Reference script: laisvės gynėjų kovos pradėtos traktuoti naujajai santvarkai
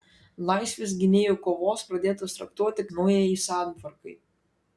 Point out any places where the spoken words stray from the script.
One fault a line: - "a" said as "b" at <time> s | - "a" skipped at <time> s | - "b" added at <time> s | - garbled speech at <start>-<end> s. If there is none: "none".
none